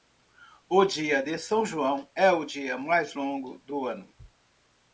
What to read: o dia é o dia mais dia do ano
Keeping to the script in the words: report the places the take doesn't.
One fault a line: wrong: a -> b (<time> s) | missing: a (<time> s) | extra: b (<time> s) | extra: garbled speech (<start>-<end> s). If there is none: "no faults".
extra: de são joão (1.2 s)
wrong: dia -> longo (3.1 s)